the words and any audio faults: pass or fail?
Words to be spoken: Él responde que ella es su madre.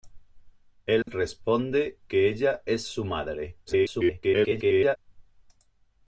fail